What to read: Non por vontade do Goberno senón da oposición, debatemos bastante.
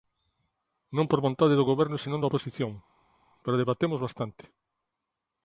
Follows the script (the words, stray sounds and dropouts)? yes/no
no